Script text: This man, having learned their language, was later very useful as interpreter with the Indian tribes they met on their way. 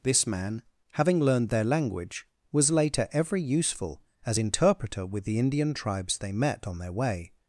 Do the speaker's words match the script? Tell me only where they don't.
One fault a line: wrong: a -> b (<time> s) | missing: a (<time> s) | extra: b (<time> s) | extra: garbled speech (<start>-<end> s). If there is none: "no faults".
wrong: very -> every (3.1 s)